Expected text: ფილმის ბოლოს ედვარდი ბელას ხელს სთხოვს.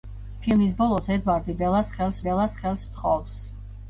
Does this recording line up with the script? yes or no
no